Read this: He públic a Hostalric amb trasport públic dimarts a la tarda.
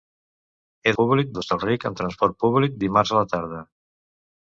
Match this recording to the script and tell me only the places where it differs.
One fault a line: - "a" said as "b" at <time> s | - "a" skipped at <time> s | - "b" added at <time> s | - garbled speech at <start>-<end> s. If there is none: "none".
none